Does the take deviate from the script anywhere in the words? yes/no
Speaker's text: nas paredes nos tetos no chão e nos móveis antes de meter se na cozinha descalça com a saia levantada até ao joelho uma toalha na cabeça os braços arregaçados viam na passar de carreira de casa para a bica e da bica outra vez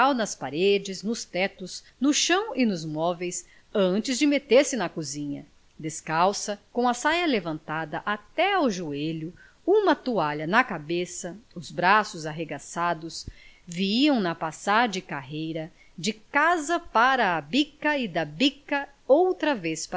no